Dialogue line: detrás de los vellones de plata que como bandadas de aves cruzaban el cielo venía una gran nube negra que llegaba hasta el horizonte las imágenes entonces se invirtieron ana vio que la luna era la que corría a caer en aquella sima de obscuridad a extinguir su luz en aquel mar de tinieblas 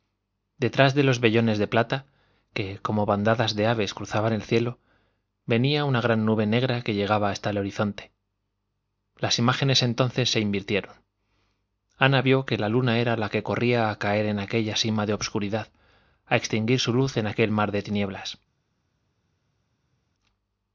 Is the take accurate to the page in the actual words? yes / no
yes